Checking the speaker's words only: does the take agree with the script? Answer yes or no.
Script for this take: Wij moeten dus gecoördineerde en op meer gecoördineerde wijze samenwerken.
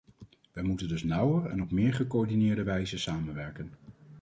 no